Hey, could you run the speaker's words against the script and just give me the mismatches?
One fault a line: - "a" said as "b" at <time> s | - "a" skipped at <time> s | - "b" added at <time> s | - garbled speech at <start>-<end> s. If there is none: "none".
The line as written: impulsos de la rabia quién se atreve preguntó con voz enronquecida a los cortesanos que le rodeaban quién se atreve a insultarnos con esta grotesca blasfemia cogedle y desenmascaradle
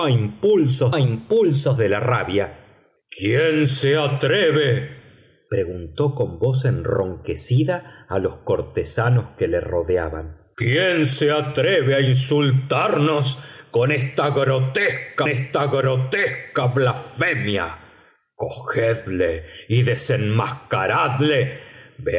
- "impulsos" added at 1.0 s
- "esta grotesca" added at 15.3 s